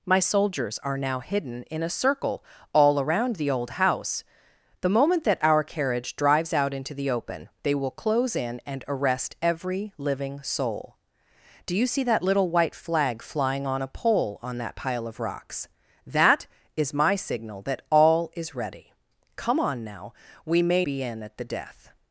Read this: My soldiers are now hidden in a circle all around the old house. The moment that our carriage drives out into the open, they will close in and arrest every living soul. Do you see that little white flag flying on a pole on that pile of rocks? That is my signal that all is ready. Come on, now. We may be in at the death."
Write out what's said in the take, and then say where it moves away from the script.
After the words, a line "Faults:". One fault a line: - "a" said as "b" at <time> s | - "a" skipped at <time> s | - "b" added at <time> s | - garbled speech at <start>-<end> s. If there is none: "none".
My soldiers are now hidden in a circle all around the old house. The moment that our carriage drives out into the open, they will close in and arrest every living soul. Do you see that little white flag flying on a pole on that pile of rocks? That is my signal that all is ready. Come on, now. We may be in at the death."
Faults:
none